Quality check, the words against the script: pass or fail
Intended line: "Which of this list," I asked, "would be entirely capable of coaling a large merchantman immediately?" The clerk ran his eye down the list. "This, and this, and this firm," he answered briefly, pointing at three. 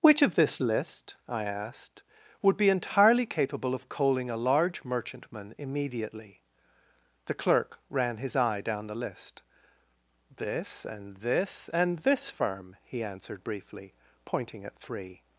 pass